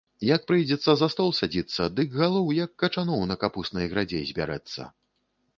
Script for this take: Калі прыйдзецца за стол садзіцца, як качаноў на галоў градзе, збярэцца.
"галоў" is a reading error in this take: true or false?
true